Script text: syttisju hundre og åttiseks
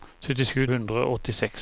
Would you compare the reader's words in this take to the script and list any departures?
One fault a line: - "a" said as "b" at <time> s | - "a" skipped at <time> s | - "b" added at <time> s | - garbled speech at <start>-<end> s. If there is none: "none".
none